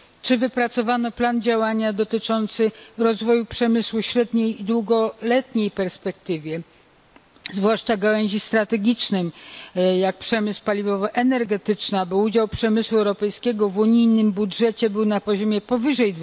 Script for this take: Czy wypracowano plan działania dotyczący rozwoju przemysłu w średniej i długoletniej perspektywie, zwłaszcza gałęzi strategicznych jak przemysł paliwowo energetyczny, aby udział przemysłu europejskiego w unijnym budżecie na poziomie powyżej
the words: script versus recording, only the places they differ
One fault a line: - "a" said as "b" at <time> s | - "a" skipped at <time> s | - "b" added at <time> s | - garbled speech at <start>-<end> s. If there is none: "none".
- "był" added at 14.9 s